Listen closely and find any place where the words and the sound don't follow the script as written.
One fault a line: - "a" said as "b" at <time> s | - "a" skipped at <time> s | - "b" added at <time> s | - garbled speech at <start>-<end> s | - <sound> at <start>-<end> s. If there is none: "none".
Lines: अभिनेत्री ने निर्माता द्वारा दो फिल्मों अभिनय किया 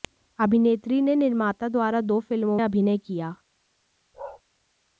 - bark at 4.1-4.4 s